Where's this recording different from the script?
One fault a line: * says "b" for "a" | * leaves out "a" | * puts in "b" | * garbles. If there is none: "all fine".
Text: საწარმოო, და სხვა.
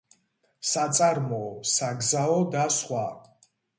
* puts in "საგზაო"